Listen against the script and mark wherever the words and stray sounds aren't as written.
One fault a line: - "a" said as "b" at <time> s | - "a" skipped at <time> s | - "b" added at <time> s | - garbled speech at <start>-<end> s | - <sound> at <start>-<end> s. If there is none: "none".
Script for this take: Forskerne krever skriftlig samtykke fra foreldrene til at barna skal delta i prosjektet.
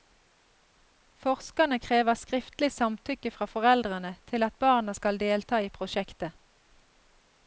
none